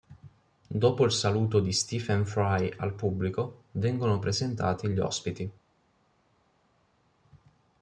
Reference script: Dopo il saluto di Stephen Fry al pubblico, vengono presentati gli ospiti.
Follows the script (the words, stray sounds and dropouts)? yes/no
yes